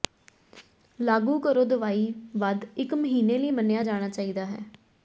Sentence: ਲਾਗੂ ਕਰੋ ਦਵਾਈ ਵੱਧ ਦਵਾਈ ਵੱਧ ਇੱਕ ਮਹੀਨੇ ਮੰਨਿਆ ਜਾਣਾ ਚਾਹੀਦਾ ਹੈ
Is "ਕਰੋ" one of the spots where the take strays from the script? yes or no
no